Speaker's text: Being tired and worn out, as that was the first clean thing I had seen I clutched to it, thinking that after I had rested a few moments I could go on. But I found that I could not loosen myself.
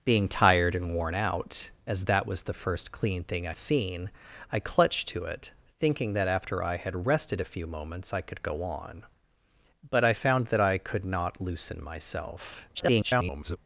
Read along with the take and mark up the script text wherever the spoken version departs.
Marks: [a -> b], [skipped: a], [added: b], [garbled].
Being tired and worn out, as that was the first clean thing I [skipped: had] seen I clutched to it, thinking that after I had rested a few moments I could go on. But I found that I could not loosen myself. [garbled]